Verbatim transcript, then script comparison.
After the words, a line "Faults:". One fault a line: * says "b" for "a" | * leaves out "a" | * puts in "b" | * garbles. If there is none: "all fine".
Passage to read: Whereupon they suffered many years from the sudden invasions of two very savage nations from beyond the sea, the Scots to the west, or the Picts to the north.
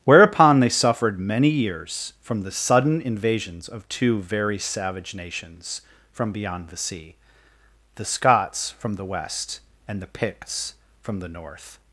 Whereupon they suffered many years from the sudden invasions of two very savage nations from beyond the sea, the Scots from the west, and the Picts from the north.
Faults:
* says "from" for "to"
* says "and" for "or"
* says "from" for "to"